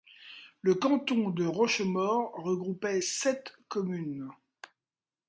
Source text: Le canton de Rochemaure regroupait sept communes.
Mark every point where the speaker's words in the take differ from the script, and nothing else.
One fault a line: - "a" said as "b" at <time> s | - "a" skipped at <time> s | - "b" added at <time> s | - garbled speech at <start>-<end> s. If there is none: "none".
none